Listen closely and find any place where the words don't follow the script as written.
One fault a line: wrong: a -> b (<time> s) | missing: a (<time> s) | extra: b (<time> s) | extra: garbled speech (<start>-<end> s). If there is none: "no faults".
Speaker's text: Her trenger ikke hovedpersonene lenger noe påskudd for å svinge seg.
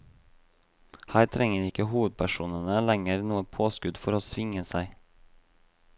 no faults